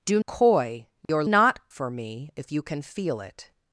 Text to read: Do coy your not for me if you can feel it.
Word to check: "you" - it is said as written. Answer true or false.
true